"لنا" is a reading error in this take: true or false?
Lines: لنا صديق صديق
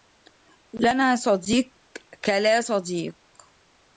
false